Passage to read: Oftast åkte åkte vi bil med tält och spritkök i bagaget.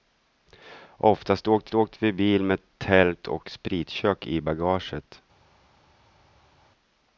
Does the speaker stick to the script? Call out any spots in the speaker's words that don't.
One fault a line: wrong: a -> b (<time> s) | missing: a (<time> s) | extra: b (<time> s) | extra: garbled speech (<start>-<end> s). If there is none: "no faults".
no faults